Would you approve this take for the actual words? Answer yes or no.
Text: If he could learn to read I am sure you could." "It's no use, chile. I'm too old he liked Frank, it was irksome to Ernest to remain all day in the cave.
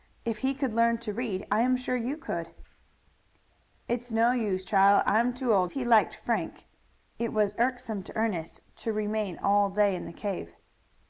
yes